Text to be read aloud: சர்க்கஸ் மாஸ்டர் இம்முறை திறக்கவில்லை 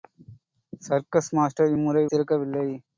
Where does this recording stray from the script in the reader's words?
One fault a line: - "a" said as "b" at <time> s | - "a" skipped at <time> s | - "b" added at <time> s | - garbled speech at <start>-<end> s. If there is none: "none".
none